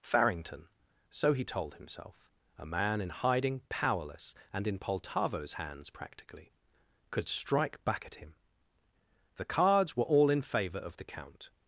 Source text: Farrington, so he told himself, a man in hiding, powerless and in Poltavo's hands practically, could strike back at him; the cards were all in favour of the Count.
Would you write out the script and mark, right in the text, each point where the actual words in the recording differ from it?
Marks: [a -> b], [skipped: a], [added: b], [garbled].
Farrington, so he told himself, a man in hiding, powerless and in Poltavo's hands practically, could strike back at him; the cards were all in favour of the Count.